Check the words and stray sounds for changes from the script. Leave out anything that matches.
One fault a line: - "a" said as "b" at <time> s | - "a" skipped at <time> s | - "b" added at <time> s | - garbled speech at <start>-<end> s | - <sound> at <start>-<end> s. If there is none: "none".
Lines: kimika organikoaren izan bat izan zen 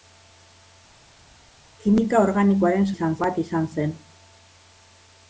none